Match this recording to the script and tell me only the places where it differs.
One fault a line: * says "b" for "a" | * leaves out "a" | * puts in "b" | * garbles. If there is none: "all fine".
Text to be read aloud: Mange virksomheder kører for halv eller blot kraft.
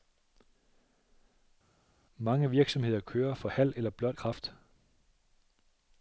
all fine